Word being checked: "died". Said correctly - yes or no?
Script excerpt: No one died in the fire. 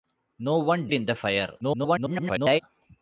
no